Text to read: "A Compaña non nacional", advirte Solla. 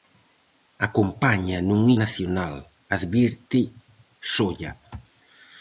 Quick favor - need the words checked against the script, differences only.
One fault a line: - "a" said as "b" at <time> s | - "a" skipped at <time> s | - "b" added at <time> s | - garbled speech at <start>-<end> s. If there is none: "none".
none